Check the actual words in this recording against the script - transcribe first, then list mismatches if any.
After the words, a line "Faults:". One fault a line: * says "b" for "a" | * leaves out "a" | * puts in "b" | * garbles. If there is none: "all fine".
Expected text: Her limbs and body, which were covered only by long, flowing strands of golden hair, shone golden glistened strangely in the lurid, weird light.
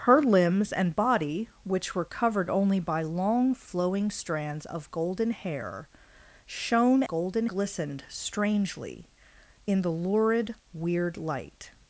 Her limbs and body, which were covered only by long, flowing strands of golden hair, shone golden glistened strangely in the lurid, weird light.
Faults:
all fine